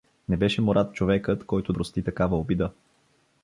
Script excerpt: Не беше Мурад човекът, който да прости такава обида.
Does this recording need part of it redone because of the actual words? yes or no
yes